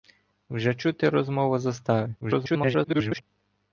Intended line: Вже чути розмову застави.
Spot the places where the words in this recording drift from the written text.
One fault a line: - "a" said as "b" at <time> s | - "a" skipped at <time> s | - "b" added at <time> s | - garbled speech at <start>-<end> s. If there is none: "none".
- garbled speech at 2.2-3.2 s